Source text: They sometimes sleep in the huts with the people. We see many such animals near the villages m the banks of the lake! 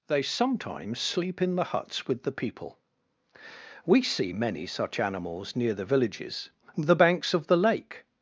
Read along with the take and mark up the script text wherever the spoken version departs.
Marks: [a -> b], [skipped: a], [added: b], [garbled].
They sometimes sleep in the huts with the people. We see many such animals near the villages [skipped: m] the banks of the lake!